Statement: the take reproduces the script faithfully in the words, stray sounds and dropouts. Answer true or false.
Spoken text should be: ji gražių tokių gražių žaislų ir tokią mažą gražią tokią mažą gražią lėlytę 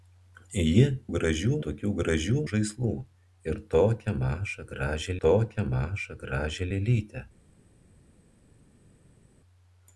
true